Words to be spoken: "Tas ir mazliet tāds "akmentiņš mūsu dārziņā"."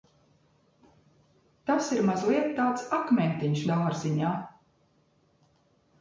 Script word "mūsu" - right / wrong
wrong